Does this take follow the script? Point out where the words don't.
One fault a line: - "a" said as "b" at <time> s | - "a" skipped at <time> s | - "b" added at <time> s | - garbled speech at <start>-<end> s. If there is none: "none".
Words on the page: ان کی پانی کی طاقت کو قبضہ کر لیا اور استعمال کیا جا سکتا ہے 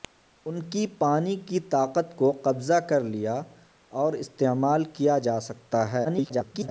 - garbled speech at 6.0-6.7 s